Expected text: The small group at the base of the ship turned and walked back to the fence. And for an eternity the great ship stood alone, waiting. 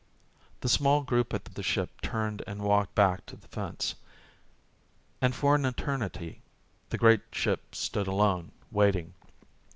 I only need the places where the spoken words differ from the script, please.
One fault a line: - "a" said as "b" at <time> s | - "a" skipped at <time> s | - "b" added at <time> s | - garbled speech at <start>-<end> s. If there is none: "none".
- "base" skipped at 1.5 s